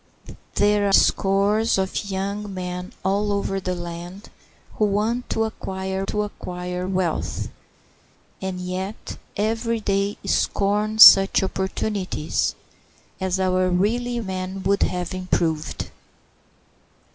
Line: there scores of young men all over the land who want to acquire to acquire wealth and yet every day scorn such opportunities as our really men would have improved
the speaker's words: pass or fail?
pass